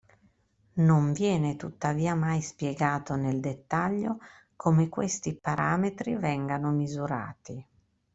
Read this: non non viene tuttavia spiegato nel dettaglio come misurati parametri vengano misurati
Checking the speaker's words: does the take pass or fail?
fail